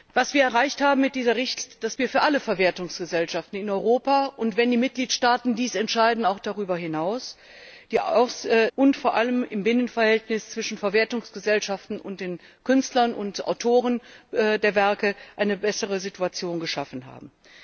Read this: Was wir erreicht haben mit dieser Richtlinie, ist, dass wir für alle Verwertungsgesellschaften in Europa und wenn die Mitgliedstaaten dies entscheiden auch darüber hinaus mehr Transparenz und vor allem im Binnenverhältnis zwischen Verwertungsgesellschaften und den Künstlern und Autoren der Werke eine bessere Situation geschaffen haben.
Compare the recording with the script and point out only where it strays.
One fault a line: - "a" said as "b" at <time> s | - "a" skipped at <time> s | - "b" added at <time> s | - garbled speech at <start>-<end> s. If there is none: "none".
- "mehr Transparenz" skipped at 7.4 s